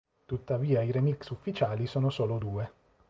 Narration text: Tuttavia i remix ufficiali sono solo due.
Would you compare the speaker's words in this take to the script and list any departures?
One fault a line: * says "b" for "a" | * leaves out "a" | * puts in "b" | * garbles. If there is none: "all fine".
all fine